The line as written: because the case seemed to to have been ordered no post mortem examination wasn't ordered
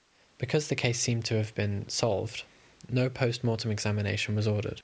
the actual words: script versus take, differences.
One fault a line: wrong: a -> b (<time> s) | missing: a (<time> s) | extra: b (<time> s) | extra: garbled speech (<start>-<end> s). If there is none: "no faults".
missing: to (1.4 s)
wrong: ordered -> solved (1.9 s)
wrong: wasn't -> was (4.3 s)